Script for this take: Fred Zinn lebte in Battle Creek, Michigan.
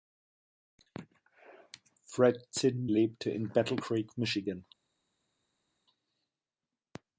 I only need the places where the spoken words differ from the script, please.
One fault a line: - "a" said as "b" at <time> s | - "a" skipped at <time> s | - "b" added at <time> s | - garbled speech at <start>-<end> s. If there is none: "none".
none